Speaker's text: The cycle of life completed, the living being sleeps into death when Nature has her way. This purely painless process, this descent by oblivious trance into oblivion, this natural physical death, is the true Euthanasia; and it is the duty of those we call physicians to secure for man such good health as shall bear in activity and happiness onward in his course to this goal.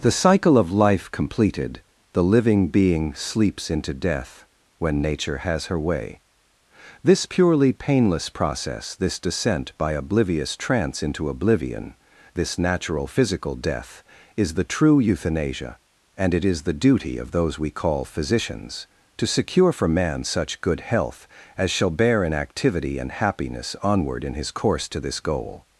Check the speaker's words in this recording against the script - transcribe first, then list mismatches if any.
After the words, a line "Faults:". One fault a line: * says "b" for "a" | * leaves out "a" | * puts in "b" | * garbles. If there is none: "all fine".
The cycle of life completed, the living being sleeps into death when Nature has her way. This purely painless process, this descent by oblivious trance into oblivion, this natural physical death, is the true Euthanasia; and it is the duty of those we call physicians to secure for man such good health as shall bear in activity and happiness onward in his course to this goal.
Faults:
all fine